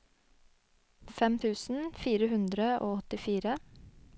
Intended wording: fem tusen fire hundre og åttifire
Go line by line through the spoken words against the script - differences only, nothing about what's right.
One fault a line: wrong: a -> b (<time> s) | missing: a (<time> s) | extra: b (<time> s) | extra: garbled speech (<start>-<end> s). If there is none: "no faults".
no faults